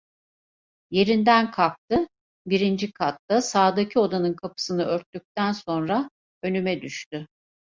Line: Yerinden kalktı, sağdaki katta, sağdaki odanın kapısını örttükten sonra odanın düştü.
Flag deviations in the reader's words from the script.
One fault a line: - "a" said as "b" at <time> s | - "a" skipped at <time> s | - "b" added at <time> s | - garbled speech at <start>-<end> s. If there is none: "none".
- "sağdaki" said as "birinci" at 2.5 s
- "odanın" said as "önüme" at 6.4 s